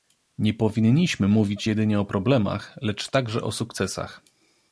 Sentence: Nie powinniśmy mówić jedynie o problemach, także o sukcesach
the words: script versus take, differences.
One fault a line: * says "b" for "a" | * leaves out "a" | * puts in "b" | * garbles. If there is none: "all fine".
* puts in "lecz"